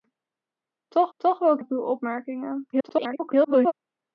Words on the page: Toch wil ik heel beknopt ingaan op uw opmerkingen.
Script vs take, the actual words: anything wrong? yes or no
yes